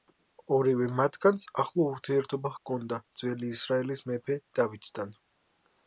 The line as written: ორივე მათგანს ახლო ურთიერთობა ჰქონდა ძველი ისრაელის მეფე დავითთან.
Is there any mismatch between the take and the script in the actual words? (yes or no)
no